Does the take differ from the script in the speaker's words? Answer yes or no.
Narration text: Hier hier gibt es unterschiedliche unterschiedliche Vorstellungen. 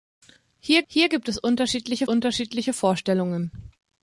no